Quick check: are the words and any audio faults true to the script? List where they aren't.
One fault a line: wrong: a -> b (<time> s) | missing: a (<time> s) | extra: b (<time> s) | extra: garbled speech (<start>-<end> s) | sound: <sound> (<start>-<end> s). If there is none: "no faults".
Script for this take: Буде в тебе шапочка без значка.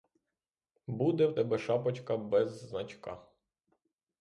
no faults